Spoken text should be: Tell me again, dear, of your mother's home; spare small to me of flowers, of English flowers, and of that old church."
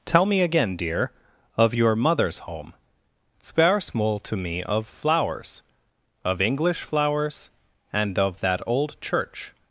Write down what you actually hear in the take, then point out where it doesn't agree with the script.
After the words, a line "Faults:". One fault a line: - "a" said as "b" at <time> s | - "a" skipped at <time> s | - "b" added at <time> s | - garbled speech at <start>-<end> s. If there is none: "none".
Tell me again, dear, of your mother's home; spare small to me of flowers, of English flowers, and of that old church."
Faults:
none